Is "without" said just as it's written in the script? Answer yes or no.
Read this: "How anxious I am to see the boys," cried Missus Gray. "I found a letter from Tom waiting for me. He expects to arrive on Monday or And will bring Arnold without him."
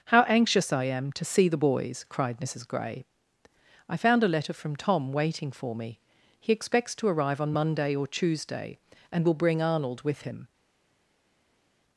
no